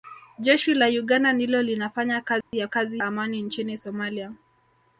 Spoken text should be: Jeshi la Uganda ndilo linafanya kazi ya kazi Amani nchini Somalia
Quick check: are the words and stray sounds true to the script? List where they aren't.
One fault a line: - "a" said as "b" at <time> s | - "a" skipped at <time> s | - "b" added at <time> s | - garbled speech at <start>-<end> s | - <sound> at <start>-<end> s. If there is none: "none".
- dropout at 2.4-2.5 s